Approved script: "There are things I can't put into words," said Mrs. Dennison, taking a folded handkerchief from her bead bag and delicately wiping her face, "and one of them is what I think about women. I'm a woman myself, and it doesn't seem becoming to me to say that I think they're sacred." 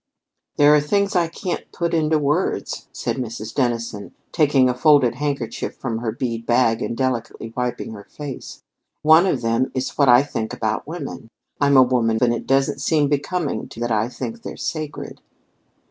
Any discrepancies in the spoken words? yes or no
yes